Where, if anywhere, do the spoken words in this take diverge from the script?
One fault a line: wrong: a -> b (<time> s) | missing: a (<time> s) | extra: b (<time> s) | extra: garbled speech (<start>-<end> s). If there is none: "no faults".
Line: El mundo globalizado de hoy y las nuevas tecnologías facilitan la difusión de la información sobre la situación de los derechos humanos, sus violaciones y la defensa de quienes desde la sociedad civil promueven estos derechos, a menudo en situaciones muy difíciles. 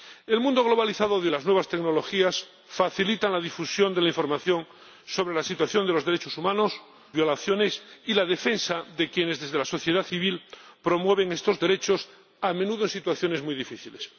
missing: hoy (1.3 s)
missing: sus (6.7 s)